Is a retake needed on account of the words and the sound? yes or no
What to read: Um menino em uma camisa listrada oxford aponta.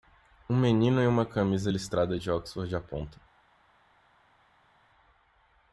yes